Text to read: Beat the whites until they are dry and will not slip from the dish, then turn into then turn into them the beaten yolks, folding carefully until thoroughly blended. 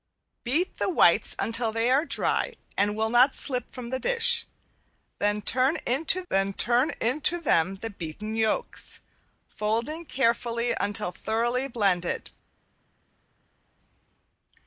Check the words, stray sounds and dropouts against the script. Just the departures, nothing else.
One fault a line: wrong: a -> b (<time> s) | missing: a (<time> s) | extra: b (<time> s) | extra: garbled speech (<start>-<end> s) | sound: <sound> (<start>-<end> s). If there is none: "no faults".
no faults